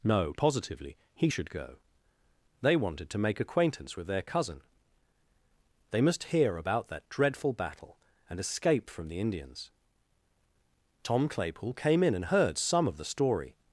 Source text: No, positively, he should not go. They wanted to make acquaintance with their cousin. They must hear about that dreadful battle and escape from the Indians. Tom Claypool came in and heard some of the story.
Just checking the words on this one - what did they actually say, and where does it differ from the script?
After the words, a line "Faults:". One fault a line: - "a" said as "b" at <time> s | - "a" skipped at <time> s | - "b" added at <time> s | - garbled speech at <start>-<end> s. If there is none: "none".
No, positively, he should go. They wanted to make acquaintance with their cousin. They must hear about that dreadful battle and escape from the Indians. Tom Claypool came in and heard some of the story.
Faults:
- "not" skipped at 1.5 s